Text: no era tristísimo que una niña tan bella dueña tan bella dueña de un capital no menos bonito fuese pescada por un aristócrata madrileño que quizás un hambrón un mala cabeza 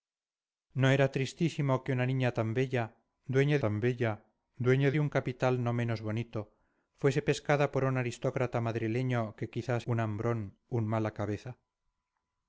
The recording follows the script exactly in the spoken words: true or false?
true